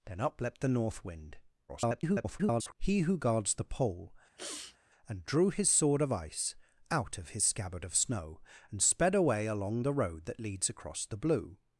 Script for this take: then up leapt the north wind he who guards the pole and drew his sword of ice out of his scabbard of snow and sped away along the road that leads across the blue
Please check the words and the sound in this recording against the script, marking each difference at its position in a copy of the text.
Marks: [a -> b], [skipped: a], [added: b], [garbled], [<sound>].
then up leapt the north wind [garbled] he who guards the pole [sniff] and drew his sword of ice out of his scabbard of snow and sped away along the road that leads across the blue